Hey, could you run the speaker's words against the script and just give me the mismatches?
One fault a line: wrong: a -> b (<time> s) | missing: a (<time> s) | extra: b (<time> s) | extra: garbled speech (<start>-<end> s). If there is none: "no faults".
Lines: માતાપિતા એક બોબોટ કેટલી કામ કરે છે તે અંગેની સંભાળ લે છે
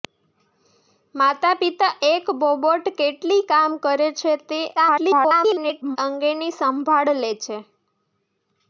extra: garbled speech (4.8-6.0 s)